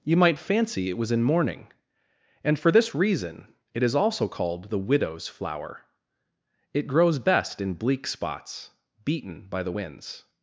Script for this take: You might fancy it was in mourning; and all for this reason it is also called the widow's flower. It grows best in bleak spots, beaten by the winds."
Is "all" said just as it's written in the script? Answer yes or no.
no